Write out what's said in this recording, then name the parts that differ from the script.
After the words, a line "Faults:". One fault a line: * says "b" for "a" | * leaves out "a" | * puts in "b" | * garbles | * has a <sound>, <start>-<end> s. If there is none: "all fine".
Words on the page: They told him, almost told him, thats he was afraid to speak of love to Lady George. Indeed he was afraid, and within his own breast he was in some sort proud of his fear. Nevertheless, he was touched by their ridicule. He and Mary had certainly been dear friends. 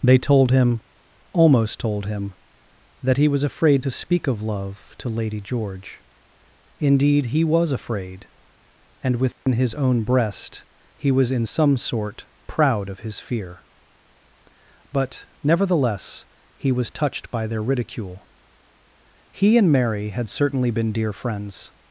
They told him, almost told him, that he was afraid to speak of love to Lady George. Indeed he was afraid, and within his own breast he was in some sort proud of his fear. But, nevertheless, he was touched by their ridicule. He and Mary had certainly been dear friends.
Faults:
* says "that" for "thats"
* has a dropout, 9.3-9.5 s
* puts in "But"